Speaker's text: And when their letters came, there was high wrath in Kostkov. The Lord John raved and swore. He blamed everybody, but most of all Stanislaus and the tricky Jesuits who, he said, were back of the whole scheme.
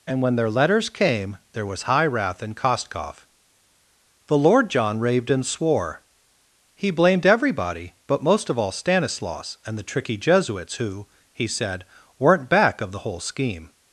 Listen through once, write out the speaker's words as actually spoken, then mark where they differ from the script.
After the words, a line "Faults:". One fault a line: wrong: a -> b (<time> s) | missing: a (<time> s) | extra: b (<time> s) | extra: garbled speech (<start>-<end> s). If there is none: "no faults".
And when their letters came, there was high wrath in Kostkov. The Lord John raved and swore. He blamed everybody, but most of all Stanislaus and the tricky Jesuits who, he said, weren't back of the whole scheme.
Faults:
wrong: were -> weren't (12.2 s)